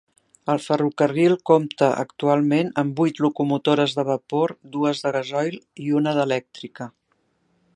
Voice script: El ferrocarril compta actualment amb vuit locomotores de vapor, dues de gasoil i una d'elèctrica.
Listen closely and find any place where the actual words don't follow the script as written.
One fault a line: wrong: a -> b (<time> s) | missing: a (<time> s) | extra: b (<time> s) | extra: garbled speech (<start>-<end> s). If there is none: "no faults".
no faults